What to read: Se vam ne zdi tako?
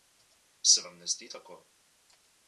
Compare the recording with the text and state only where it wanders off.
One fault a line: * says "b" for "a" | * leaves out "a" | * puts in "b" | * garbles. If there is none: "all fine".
all fine